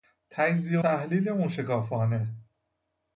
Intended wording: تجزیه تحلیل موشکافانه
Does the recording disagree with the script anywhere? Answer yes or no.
no